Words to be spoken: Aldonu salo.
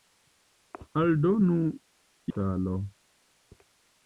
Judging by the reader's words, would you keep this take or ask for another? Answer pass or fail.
pass